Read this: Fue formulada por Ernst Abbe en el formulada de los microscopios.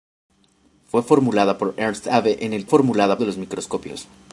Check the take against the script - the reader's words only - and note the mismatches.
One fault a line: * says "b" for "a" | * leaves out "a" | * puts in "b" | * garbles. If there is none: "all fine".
all fine